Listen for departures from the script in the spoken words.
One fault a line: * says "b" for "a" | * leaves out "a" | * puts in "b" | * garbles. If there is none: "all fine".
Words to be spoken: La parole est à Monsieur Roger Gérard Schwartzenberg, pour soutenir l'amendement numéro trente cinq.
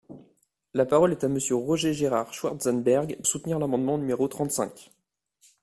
* leaves out "pour"